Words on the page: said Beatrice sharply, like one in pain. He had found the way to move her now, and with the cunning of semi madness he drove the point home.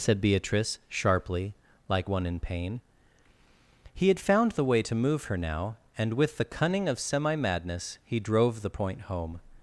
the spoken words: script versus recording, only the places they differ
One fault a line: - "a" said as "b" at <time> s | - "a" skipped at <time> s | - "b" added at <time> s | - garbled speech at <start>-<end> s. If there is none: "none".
none